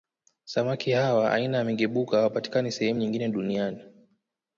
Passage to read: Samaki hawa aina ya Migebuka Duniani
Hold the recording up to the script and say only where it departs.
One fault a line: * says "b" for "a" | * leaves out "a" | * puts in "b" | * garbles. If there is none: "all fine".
* puts in "hawapatikani sehemu nyingine"